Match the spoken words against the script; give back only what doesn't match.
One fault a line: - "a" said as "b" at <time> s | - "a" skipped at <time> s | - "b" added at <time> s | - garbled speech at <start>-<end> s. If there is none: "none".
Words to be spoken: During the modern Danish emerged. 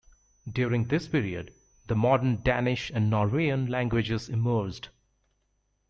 - "this period" added at 0.9 s
- "and Norwegian languages" added at 2.9 s